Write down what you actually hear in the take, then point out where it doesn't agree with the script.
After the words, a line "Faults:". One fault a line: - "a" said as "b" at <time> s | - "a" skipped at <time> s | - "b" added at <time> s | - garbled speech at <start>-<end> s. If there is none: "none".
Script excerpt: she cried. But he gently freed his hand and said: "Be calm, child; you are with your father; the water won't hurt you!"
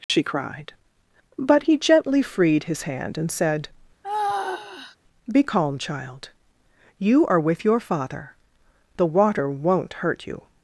she cried. But he gently freed his hand and said: "Be calm, child; you are with your father; the water won't hurt you!"
Faults:
none